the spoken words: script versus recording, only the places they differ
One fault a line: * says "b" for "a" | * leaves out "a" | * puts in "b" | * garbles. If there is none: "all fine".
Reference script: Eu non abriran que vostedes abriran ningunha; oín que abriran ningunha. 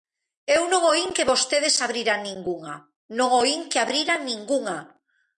* says "oín" for "abriran"
* puts in "non"